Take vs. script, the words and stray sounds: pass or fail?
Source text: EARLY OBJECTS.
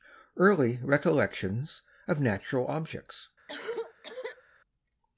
fail